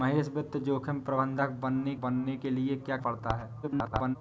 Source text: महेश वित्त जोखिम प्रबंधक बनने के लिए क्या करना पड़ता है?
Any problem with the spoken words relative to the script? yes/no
yes